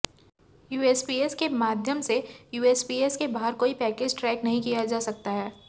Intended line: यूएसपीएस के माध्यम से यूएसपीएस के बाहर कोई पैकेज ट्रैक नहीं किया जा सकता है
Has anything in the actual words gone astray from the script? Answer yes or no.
no